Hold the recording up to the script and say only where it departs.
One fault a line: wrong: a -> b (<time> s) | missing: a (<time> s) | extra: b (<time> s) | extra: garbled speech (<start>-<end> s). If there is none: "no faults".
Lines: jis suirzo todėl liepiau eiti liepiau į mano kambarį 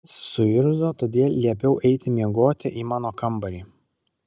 wrong: liepiau -> miegoti (2.1 s)